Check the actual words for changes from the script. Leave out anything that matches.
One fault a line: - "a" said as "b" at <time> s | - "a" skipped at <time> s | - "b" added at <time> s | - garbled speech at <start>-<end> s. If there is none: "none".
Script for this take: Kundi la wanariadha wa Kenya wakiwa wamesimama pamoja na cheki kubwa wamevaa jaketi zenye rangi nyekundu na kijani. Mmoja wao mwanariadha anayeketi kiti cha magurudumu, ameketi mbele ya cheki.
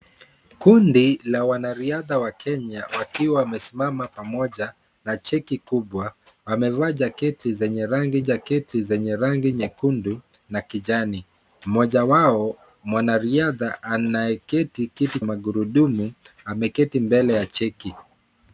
- "jaketi zenye rangi" added at 8.2 s
- "cha" skipped at 15.2 s